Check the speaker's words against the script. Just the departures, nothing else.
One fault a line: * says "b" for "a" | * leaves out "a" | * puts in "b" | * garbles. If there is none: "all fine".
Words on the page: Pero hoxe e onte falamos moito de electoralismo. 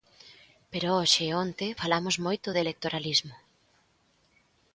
all fine